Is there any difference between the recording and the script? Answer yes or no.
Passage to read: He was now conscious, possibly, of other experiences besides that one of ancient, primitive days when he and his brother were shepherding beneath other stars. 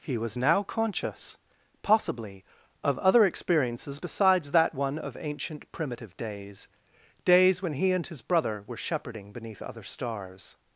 yes